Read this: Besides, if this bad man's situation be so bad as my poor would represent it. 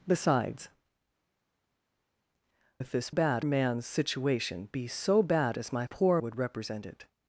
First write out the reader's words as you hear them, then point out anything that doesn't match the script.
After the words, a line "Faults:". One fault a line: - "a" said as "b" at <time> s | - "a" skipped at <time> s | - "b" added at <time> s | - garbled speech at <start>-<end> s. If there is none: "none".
Besides, if this bad man's situation be so bad as my poor would represent it.
Faults:
none